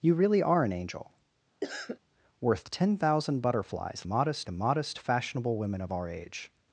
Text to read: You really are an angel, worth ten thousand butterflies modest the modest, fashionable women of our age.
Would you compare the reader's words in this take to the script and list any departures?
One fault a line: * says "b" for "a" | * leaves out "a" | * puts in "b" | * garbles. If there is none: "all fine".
all fine